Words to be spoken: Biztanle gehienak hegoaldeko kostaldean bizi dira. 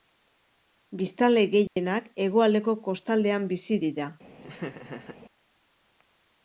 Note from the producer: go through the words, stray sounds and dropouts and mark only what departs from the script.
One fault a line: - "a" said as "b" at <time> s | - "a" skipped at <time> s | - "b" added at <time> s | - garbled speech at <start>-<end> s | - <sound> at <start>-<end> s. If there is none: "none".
- dropout at 1.7-1.8 s
- laugh at 4.4-5.2 s